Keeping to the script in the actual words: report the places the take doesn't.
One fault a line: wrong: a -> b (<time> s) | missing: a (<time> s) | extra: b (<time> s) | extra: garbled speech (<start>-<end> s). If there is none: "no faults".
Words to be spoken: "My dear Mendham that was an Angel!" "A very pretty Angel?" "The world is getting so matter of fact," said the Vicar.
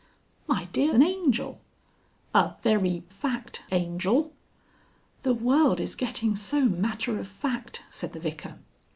missing: Mendham that was (0.9 s)
wrong: pretty -> fact (3.1 s)